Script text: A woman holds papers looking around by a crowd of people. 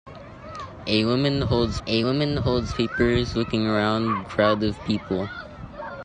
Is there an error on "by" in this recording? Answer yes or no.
yes